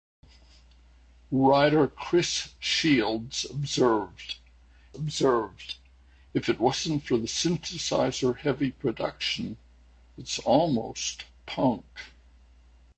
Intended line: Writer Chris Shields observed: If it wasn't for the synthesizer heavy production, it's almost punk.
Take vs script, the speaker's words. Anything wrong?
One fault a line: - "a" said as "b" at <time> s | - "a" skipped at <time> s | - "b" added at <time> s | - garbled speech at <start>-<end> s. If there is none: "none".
- "observed" added at 4.9 s